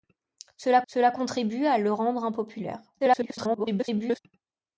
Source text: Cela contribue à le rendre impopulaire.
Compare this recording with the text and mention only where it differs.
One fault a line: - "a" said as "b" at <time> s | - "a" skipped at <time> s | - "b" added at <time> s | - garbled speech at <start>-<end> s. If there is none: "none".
- "cela" added at 0.9 s
- garbled speech at 3.0-4.2 s